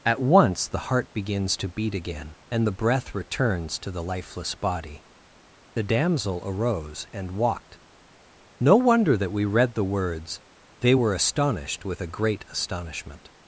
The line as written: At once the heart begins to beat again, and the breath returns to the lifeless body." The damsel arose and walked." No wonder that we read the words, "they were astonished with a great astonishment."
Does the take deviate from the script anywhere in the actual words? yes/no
no